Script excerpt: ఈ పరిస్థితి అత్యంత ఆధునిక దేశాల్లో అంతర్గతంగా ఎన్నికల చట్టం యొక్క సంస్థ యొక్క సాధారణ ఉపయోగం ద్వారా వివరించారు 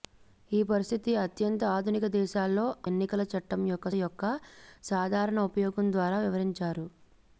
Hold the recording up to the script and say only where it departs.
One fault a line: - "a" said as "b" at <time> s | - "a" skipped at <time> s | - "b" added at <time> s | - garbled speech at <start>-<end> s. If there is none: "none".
- "అంతర్గతంగా" skipped at 2.6 s
- "సంస్థ" skipped at 3.9 s